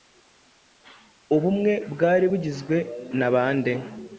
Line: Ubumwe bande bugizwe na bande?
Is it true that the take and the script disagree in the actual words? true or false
true